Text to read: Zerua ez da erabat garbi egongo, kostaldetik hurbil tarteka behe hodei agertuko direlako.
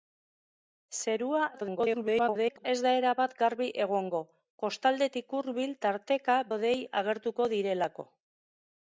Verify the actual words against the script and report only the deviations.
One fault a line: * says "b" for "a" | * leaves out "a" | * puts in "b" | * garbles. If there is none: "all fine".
* garbles
* leaves out "behe"